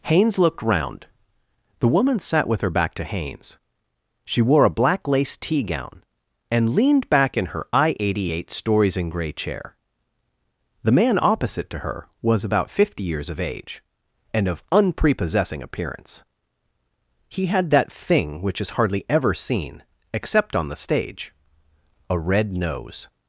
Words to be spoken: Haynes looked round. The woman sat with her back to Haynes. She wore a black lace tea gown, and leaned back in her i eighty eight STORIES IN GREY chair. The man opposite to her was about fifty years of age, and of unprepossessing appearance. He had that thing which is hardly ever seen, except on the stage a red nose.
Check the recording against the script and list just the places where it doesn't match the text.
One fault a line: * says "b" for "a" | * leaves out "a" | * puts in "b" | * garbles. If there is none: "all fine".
all fine